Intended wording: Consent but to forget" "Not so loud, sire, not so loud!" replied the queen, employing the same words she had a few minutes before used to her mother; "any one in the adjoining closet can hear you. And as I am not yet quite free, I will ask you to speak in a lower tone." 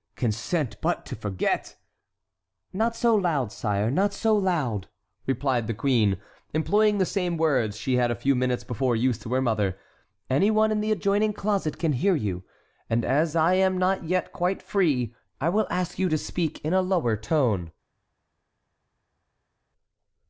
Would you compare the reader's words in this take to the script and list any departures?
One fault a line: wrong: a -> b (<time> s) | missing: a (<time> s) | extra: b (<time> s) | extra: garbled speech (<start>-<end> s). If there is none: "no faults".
no faults